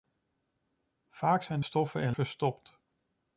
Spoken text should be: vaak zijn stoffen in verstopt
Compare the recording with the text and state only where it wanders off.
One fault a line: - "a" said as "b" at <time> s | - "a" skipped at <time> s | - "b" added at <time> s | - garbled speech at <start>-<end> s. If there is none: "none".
none